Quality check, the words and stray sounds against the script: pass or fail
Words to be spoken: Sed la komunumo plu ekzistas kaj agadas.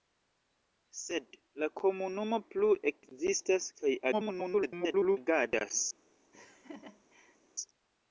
fail